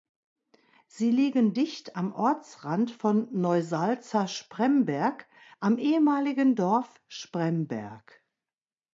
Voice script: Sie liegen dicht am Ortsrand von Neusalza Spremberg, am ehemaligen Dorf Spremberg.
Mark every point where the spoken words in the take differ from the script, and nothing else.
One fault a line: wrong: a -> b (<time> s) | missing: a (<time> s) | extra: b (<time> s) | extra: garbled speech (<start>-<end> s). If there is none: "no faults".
no faults